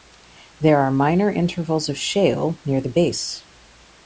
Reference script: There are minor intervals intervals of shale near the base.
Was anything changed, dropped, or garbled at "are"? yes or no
no